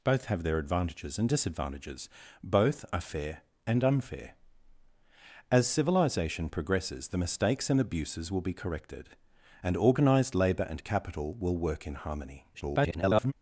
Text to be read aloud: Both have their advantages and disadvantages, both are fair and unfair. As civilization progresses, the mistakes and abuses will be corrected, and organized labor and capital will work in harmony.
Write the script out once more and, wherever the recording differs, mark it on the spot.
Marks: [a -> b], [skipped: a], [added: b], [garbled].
Both have their advantages and disadvantages, both are fair and unfair. As civilization progresses, the mistakes and abuses will be corrected, and organized labor and capital will work in harmony. [garbled]